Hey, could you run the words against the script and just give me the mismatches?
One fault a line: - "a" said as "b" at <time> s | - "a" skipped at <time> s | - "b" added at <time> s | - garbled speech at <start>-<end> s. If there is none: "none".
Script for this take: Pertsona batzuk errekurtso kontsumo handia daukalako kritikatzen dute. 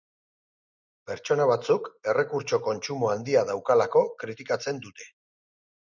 none